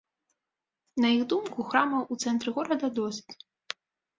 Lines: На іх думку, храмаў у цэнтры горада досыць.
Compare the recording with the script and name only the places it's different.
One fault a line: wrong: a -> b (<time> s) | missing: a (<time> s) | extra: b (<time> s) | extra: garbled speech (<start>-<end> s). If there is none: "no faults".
no faults